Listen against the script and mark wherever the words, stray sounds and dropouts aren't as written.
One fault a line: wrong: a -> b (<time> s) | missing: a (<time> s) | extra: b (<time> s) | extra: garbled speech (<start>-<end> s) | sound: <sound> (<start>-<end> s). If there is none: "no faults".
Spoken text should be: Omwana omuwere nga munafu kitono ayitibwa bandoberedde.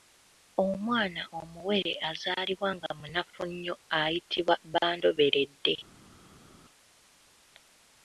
extra: azaalibwa (2.1 s)
wrong: kitono -> nnyo (3.5 s)